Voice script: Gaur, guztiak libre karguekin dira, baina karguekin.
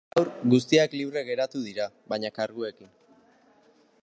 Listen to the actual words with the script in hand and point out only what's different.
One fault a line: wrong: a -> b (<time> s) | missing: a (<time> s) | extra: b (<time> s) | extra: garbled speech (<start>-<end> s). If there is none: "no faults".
wrong: karguekin -> geratu (1.3 s)